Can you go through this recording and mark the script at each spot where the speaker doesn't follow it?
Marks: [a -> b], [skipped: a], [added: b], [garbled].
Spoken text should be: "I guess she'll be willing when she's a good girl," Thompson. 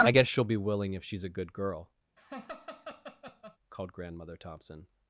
"I guess she'll be willing [when -> if] she's a good girl," [added: called Grandmother] Thompson.